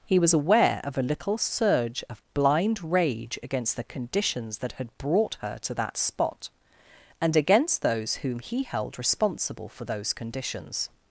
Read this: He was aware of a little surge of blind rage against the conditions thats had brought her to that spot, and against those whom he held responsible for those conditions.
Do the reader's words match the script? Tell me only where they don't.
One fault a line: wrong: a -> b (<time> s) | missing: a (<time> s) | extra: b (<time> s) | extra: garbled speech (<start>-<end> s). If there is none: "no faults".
wrong: thats -> that (4.6 s)